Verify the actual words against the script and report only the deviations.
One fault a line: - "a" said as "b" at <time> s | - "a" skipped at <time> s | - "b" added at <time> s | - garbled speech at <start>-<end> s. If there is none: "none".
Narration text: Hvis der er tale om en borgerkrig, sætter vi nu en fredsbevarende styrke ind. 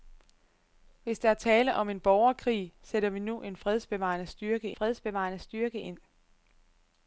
- "fredsbevarende styrke" added at 4.7 s